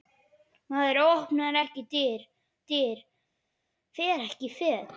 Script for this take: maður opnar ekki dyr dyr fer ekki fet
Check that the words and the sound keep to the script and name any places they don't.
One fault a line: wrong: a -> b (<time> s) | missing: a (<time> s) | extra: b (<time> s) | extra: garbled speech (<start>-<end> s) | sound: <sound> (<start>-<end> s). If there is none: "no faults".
no faults